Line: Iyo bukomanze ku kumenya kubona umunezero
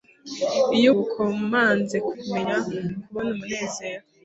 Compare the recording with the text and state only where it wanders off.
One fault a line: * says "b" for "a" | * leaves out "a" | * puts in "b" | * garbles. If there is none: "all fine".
all fine